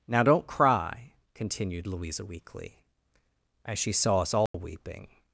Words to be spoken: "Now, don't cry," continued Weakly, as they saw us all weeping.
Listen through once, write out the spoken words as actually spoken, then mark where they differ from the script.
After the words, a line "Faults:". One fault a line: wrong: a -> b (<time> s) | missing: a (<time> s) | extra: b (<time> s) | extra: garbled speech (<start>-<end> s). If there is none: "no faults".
"Now, don't cry," continued Louisa weakly, as she saw us all weeping.
Faults:
extra: Louisa (1.9 s)
wrong: they -> she (3.8 s)